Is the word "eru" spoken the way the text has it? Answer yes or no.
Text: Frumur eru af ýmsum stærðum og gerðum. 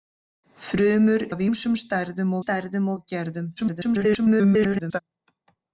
no